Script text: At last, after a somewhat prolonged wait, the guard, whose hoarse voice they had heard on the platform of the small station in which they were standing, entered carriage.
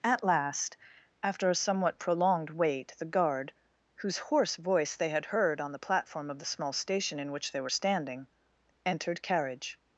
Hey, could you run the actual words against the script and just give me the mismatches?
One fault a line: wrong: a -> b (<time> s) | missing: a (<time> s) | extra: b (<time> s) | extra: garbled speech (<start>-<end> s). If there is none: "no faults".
no faults